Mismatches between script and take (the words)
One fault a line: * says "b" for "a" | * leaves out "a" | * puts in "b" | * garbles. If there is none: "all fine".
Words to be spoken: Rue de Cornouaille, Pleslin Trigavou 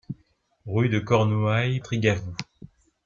* leaves out "Pleslin"